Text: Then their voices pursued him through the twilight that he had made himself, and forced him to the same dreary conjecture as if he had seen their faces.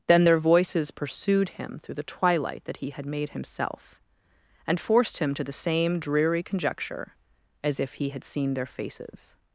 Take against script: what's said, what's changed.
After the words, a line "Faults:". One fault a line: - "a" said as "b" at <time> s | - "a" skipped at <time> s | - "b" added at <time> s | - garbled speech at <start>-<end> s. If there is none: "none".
Then their voices pursued him through the twilight that he had made himself, and forced him to the same dreary conjecture as if he had seen their faces.
Faults:
none